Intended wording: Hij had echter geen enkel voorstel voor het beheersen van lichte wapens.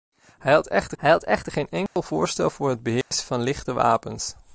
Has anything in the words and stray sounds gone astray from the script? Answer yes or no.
yes